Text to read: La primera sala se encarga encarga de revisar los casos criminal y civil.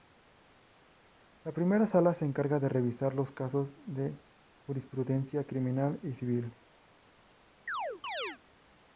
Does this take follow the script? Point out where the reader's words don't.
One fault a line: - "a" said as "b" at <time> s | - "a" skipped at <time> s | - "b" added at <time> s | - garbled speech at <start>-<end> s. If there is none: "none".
- "encarga" skipped at 2.6 s
- "de jurisprudencia" added at 3.9 s